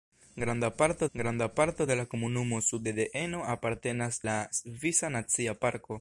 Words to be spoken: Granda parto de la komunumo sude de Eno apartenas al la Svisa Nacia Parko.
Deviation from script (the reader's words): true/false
true